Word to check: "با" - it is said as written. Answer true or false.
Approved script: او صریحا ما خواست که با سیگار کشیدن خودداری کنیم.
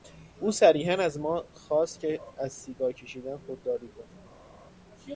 false